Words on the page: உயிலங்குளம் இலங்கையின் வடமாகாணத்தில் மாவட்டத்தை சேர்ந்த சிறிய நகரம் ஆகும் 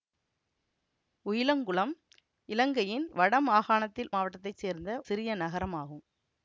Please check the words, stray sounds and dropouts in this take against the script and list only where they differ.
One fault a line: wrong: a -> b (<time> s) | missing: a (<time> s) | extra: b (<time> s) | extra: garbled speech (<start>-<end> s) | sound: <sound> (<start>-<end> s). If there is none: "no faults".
no faults